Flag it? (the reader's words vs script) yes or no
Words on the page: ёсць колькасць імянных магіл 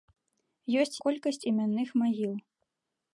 no